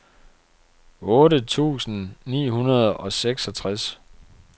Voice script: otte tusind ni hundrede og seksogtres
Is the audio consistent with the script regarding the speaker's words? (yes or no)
yes